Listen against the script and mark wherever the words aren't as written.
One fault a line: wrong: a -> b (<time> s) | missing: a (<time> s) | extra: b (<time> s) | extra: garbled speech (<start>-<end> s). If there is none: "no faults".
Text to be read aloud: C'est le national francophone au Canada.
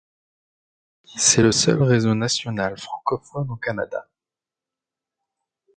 extra: seul réseau (1.5 s)